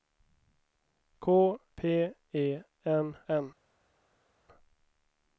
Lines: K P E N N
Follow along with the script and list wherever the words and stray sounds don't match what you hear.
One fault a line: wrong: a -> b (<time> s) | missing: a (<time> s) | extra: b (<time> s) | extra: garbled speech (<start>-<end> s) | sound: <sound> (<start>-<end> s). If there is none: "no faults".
no faults